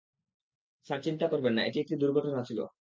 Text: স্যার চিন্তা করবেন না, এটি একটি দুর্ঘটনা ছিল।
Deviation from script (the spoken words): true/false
false